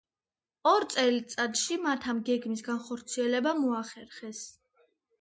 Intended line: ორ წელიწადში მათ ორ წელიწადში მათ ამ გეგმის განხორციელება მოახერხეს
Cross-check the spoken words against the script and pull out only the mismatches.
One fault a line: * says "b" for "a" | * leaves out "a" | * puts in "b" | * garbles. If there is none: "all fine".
* leaves out "ორ წელიწადში მათ"